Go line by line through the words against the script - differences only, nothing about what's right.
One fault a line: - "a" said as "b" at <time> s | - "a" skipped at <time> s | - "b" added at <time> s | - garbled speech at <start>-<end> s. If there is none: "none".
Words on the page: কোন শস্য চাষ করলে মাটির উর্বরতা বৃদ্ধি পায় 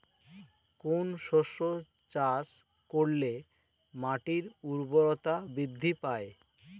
none